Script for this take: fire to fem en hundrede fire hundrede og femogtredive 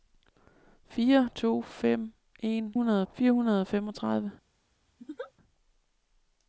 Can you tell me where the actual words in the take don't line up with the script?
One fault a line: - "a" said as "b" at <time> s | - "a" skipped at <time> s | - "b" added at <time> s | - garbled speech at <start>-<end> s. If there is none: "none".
none